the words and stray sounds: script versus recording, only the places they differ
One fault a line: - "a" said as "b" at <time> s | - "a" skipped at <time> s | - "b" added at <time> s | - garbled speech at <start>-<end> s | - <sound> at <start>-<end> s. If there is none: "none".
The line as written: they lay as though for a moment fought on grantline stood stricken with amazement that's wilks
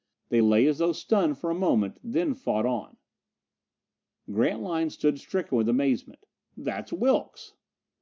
- "stunned" added at 0.9 s
- "then" added at 2.0 s